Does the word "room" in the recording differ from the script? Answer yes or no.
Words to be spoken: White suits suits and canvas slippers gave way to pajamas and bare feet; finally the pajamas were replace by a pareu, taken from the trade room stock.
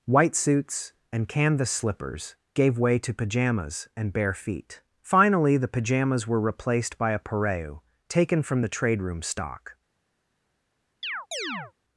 no